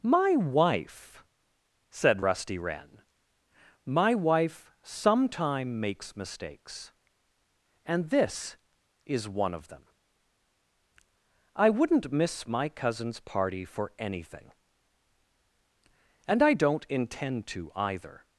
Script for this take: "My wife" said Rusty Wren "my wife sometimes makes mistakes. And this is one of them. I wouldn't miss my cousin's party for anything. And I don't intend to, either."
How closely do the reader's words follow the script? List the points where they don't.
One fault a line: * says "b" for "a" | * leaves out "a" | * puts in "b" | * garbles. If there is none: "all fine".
* says "sometime" for "sometimes"